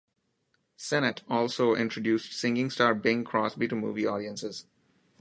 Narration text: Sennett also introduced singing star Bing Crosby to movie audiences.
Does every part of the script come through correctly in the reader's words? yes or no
yes